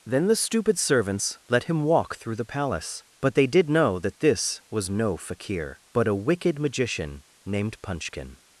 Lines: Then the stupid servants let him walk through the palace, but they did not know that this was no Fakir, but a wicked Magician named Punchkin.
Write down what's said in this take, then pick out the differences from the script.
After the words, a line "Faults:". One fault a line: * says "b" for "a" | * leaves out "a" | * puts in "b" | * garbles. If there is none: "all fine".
Then the stupid servants let him walk through the palace, but they did know that this was no Fakir, but a wicked Magician named Punchkin.
Faults:
* leaves out "not"